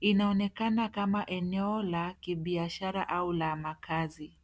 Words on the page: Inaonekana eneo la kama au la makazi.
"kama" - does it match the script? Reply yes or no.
no